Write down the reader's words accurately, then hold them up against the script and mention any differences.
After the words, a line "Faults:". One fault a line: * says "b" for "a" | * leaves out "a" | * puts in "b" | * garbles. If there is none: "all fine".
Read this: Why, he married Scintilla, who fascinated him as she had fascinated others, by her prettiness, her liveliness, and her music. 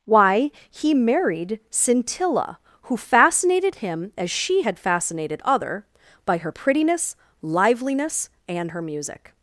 Why, he married Scintilla, who fascinated him as she had fascinated other, by her prettiness, liveliness, and her music.
Faults:
* says "other" for "others"
* leaves out "her"